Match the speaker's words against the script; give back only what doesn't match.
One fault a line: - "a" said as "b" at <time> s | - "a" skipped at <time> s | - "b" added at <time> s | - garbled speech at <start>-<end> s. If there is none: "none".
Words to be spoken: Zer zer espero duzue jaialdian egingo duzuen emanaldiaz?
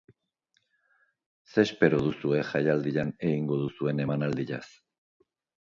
- "zer" skipped at 1.6 s